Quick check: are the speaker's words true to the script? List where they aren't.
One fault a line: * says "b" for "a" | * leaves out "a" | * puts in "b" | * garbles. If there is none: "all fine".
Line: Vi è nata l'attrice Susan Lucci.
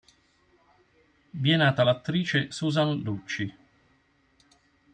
all fine